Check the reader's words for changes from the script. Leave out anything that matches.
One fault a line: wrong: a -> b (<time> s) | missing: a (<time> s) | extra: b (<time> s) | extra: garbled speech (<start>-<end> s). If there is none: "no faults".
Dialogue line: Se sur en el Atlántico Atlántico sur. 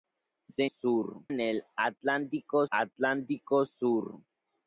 no faults